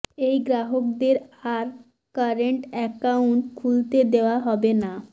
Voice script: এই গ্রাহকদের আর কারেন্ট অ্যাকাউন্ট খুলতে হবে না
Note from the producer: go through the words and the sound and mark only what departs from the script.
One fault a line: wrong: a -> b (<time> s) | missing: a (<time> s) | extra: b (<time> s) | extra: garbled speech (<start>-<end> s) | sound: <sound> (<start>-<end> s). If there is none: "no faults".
extra: দেওয়া (4.1 s)